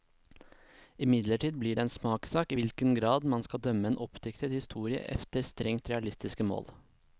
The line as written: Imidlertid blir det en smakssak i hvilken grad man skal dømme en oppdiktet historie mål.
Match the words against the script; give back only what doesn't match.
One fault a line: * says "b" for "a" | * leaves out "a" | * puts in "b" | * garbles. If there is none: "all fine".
* puts in "efter strengt realistiske"